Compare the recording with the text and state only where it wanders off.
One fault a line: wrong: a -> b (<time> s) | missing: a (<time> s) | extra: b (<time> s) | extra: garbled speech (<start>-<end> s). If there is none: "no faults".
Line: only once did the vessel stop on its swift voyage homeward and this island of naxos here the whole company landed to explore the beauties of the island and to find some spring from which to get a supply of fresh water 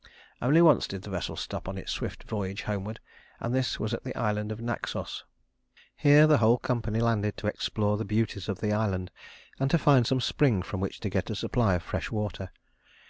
extra: was at the (3.8 s)